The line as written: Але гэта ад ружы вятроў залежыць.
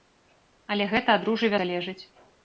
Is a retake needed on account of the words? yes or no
yes